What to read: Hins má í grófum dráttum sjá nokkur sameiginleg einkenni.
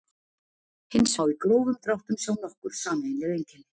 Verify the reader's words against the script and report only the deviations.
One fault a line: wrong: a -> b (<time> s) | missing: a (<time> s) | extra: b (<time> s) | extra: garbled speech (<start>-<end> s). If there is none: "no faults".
no faults